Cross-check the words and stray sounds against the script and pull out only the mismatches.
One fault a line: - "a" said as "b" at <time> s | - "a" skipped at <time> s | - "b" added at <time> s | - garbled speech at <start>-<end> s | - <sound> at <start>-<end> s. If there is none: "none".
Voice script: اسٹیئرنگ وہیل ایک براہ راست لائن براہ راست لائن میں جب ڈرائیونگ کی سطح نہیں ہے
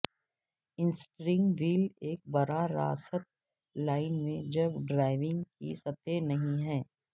- "براہ راست لائن" skipped at 4.1 s